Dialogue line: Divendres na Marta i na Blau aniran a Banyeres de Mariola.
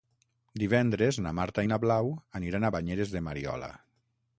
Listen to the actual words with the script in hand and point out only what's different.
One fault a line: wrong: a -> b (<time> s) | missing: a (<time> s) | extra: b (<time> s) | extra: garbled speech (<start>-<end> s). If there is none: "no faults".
no faults